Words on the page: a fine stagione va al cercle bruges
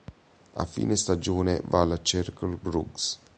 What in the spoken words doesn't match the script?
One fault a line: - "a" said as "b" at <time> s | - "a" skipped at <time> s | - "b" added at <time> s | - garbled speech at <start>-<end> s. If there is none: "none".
none